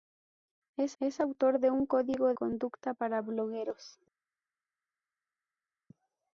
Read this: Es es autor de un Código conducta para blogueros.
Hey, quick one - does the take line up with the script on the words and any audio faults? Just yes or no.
yes